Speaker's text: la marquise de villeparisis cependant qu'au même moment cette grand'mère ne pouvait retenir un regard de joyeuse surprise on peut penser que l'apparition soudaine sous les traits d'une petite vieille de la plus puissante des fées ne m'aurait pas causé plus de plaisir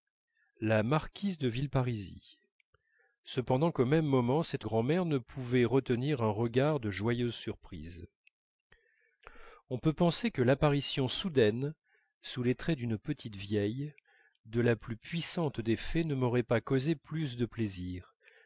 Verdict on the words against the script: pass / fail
pass